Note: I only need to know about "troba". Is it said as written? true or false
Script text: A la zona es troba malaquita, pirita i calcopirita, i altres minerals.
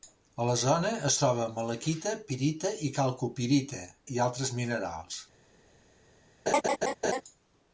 true